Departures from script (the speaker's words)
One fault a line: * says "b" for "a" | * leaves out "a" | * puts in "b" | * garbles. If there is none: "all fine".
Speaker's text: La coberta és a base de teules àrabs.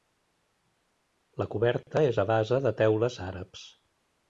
all fine